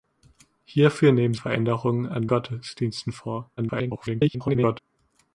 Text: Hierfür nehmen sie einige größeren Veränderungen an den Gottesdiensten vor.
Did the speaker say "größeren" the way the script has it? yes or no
no